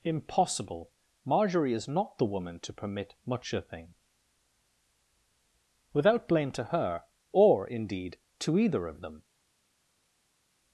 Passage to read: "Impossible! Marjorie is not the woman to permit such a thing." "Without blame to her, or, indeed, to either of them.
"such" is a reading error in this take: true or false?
true